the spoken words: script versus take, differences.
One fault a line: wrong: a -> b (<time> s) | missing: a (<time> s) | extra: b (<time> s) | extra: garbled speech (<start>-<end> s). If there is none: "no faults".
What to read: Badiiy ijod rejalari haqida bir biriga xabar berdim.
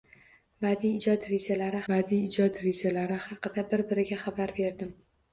extra: badiiy ijod rejalari (1.9 s)